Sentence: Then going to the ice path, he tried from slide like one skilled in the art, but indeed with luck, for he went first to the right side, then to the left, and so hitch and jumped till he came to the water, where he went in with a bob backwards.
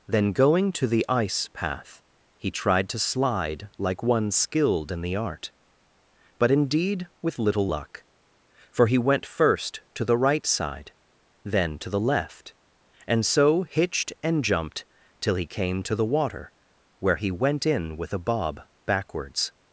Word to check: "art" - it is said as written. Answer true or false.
true